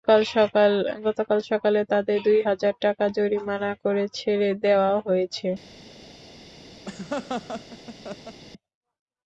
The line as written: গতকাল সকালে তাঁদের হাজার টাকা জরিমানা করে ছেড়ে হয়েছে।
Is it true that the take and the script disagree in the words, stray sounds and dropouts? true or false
true